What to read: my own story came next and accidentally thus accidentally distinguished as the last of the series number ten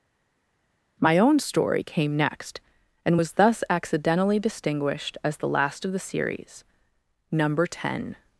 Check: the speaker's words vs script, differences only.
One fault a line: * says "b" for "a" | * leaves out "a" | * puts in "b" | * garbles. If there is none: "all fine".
* says "was" for "accidentally"